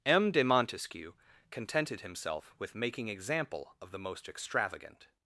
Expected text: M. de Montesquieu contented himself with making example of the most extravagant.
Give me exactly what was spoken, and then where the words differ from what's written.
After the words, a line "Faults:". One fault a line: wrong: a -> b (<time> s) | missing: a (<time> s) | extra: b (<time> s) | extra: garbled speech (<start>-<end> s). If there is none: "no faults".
M. de Montesquieu contented himself with making example of the most extravagant.
Faults:
no faults